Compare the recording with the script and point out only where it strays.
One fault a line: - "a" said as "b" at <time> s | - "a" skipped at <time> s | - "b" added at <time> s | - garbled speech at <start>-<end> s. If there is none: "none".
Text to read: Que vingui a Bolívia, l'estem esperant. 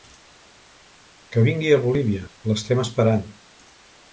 none